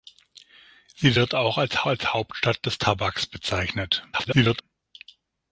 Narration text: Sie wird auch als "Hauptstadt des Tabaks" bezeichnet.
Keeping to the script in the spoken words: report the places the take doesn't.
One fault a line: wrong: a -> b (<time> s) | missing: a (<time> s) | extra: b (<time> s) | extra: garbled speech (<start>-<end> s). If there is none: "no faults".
extra: als (1.9 s)
extra: garbled speech (4.1-4.6 s)